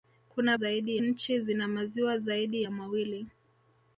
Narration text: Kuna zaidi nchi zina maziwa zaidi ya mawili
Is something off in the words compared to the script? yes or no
no